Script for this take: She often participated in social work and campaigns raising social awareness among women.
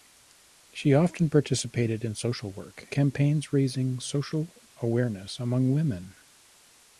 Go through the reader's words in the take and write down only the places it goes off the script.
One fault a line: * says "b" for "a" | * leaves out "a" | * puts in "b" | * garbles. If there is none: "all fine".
* leaves out "and"